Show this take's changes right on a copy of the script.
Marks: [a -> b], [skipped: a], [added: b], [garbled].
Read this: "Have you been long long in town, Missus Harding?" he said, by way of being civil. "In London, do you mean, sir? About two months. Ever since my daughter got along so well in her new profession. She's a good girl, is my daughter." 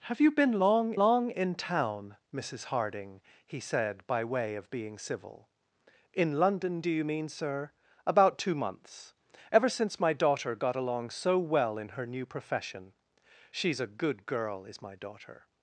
"Have you been long long in town, Missus Harding?" he said, by way of being civil. "In London, do you mean, sir? About two months. Ever since my daughter got along so well in her new profession. She's a good girl, is my daughter."